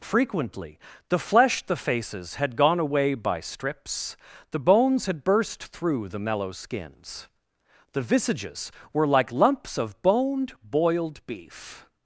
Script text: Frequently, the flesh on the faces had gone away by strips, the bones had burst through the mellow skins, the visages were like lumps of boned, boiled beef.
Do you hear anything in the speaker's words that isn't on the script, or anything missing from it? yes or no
yes